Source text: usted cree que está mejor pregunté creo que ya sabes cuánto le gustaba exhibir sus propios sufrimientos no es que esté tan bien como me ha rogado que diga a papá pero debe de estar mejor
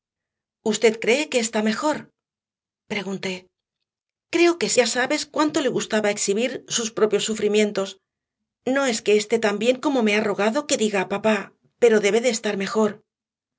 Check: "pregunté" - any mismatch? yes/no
no